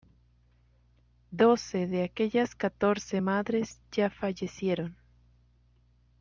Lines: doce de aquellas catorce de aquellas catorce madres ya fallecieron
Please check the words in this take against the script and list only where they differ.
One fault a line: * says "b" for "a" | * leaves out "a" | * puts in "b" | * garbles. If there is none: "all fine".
* leaves out "de aquellas catorce"